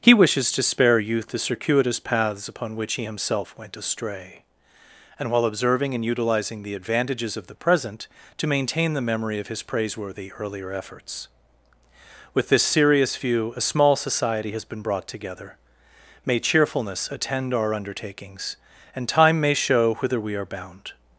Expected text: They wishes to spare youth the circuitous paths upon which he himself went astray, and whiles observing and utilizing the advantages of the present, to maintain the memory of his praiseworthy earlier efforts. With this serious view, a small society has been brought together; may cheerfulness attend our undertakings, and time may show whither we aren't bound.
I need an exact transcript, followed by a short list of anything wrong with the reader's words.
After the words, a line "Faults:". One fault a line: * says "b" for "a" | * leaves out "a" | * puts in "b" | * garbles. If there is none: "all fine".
He wishes to spare youth the circuitous paths upon which he himself went astray, and while observing and utilizing the advantages of the present, to maintain the memory of his praiseworthy earlier efforts. With this serious view, a small society has been brought together; may cheerfulness attend our undertakings, and time may show whither we are bound.
Faults:
* says "He" for "They"
* says "while" for "whiles"
* says "are" for "aren't"